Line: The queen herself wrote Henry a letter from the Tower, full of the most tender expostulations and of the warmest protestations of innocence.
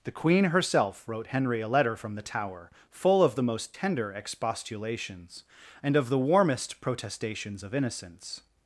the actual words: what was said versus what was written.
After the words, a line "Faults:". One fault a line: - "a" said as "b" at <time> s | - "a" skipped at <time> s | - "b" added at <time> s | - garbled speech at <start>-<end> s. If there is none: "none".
The queen herself wrote Henry a letter from the Tower, full of the most tender expostulations and of the warmest protestations of innocence.
Faults:
none